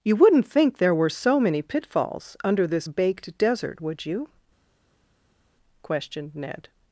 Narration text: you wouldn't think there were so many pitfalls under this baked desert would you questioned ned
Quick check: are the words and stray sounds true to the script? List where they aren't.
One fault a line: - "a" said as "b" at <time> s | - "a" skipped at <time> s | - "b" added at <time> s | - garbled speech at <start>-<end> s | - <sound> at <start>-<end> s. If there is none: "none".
none